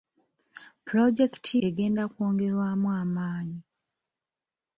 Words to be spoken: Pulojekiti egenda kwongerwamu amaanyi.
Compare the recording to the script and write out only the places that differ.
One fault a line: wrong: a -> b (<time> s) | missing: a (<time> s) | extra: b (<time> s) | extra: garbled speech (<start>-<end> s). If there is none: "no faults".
no faults